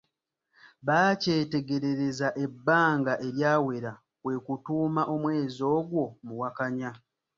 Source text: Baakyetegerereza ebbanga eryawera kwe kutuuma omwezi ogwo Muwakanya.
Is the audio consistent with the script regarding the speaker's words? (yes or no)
yes